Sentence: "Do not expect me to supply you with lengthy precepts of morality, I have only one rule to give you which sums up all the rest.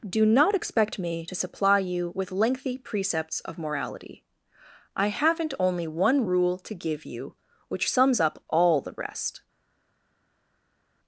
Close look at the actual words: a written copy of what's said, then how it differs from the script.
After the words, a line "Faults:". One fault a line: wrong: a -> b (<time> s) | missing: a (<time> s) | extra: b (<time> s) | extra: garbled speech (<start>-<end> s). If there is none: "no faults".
"Do not expect me to supply you with lengthy precepts of morality, I haven't only one rule to give you which sums up all the rest.
Faults:
wrong: have -> haven't (5.1 s)